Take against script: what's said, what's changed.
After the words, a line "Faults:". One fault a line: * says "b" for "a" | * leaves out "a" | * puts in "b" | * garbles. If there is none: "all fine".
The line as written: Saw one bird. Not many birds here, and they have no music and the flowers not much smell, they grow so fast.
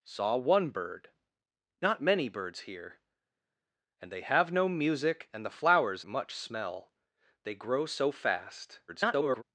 Saw one bird. Not many birds here, and they have no music and the flowers much smell, they grow so fast. [garbled]
Faults:
* leaves out "not"
* garbles